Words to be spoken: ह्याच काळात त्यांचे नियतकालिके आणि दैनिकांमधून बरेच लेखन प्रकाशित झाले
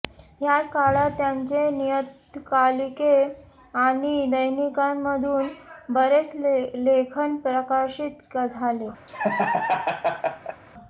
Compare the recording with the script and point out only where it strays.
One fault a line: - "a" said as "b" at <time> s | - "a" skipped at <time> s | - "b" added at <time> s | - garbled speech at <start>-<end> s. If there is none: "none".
none